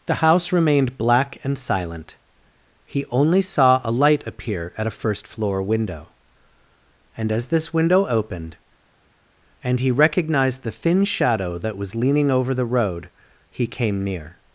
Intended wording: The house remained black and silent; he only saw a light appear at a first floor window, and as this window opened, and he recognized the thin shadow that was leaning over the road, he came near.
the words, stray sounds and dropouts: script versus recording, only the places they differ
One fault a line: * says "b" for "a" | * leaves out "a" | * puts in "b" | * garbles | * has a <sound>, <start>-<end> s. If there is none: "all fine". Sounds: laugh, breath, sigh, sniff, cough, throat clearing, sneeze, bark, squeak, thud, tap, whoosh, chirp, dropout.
all fine